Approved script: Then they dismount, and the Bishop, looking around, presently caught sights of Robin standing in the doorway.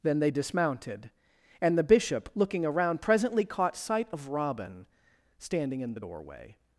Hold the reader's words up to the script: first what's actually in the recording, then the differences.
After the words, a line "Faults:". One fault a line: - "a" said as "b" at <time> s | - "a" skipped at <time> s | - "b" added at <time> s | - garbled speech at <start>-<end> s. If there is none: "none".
Then they dismounted, and the Bishop, looking around, presently caught sight of Robin standing in the doorway.
Faults:
- "dismount" said as "dismounted" at 0.3 s
- "sights" said as "sight" at 3.8 s